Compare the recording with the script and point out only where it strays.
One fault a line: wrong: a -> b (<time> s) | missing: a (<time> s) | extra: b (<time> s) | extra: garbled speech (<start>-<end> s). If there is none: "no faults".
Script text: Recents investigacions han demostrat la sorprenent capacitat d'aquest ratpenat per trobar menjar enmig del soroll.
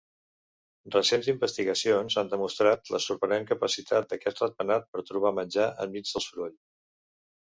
no faults